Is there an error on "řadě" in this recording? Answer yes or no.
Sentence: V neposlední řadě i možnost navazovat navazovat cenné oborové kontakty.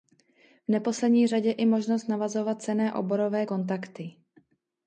no